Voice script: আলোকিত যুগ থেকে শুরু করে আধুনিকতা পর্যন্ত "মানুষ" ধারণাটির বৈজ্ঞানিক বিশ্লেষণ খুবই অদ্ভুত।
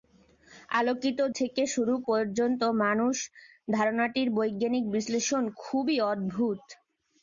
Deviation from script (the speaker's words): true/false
true